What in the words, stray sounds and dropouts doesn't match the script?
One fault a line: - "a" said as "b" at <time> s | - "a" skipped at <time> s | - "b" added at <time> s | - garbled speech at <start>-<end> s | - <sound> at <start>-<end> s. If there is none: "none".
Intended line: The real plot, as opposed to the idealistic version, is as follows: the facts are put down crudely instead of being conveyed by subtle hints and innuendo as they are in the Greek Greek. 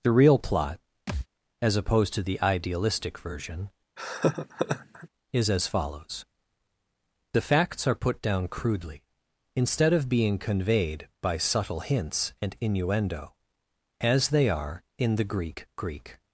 - thud at 1.1-1.3 s
- laugh at 4.0-5.1 s